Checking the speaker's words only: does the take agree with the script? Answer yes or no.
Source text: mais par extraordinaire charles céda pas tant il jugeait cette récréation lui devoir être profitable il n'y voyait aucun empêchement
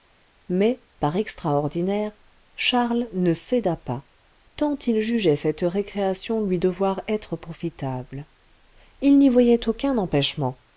no